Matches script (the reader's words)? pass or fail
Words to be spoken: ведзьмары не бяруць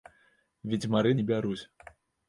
pass